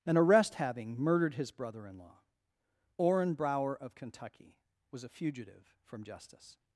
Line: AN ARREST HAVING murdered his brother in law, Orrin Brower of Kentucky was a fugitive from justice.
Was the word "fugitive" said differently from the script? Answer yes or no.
no